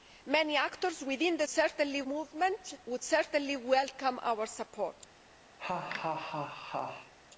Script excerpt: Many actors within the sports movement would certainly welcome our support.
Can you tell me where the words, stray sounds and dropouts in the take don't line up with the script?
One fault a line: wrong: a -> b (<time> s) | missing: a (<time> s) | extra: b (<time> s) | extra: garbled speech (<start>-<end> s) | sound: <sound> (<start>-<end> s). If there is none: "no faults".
wrong: sports -> certainly (1.5 s)
sound: laugh (5.6-7.1 s)